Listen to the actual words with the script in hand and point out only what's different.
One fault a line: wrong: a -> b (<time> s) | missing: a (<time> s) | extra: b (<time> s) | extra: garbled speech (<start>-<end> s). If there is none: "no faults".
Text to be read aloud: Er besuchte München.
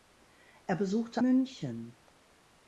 no faults